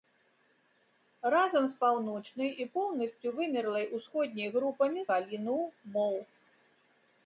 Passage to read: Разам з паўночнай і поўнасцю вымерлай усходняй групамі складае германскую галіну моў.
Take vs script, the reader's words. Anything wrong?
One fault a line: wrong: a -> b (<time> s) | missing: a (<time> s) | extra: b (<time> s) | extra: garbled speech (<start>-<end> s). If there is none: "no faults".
missing: складае германскую (5.0 s)